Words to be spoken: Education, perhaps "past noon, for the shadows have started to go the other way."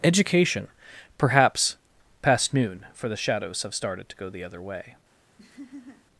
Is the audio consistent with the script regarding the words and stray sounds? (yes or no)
no